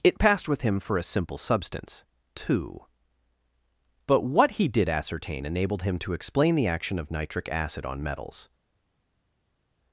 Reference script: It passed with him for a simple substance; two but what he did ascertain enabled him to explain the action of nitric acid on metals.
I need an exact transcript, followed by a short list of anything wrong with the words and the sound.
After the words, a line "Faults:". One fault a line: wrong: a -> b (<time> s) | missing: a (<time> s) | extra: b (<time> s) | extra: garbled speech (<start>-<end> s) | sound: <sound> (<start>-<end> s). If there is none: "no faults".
It passed with him for a simple substance; two but what he did ascertain enabled him to explain the action of nitric acid on metals.
Faults:
no faults